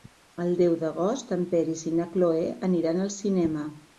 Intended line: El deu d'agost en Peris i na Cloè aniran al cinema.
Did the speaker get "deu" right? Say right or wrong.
right